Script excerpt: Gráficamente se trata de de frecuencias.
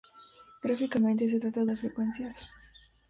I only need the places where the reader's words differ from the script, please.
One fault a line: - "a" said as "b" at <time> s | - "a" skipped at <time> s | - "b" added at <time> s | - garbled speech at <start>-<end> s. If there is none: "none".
none